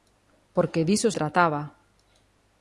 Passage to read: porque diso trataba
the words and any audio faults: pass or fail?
pass